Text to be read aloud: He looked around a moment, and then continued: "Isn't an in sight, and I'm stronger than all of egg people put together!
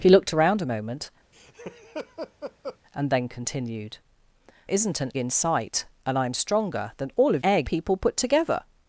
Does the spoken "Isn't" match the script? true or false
true